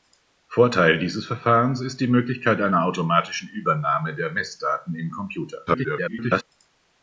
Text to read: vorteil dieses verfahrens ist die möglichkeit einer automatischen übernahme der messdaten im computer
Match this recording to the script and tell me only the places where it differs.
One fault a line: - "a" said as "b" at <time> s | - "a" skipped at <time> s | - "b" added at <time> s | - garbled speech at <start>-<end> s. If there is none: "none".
- garbled speech at 5.7-6.4 s